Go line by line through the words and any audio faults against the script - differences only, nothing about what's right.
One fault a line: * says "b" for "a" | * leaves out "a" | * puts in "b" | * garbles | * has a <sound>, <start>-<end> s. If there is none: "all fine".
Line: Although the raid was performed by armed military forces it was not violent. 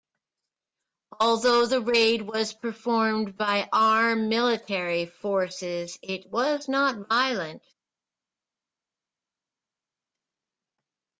all fine